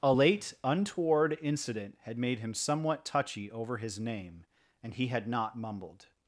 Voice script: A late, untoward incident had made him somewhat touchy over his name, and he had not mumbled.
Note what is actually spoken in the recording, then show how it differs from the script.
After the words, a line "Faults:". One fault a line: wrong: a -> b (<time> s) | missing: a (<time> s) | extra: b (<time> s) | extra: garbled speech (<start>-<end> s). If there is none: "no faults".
A late, untoward incident had made him somewhat touchy over his name, and he had not mumbled.
Faults:
no faults